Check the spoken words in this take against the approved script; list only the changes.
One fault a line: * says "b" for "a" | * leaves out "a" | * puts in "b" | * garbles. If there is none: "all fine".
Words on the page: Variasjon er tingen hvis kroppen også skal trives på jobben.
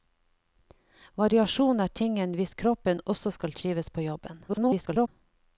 * garbles